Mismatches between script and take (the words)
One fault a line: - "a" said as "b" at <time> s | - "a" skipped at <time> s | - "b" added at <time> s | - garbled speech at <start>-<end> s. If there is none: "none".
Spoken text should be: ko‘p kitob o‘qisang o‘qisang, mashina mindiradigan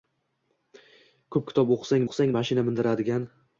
none